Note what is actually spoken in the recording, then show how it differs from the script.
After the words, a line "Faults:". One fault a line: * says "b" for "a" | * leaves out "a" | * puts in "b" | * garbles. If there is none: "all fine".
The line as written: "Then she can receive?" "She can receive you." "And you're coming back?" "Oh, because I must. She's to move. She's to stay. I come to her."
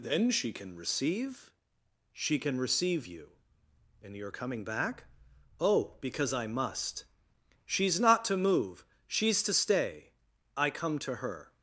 "Then she can receive?" "She can receive you." "And you're coming back?" "Oh, because I must. She's not to move. She's to stay. I come to her."
Faults:
* puts in "not"